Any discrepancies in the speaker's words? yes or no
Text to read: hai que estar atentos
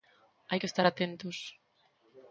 no